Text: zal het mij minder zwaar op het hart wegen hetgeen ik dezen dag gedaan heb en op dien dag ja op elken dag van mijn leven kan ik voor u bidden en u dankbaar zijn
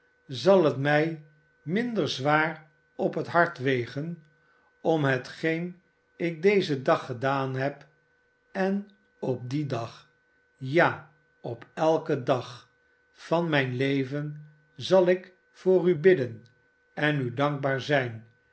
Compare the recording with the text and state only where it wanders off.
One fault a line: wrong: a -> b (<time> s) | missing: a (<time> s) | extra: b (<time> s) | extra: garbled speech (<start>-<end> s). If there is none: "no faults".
extra: om (4.8 s)
wrong: kan -> zal (14.8 s)